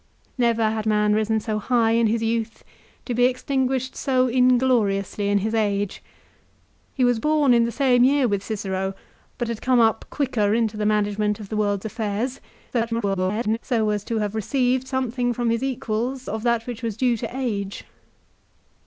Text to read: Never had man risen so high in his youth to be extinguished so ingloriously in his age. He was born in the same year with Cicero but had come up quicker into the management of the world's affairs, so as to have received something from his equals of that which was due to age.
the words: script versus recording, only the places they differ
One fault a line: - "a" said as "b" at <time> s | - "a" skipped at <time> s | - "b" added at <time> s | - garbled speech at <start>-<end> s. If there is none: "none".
- garbled speech at 12.7-13.6 s